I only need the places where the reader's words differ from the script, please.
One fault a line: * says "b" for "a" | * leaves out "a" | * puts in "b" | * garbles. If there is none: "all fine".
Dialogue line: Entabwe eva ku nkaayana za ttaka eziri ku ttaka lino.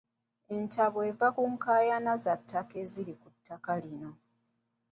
all fine